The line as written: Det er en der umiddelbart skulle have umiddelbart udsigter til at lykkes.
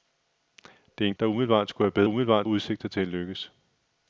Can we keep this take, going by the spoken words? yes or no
yes